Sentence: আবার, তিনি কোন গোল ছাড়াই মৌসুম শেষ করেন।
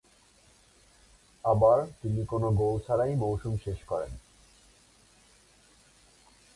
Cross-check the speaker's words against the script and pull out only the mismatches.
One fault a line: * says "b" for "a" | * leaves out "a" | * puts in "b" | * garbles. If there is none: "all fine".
all fine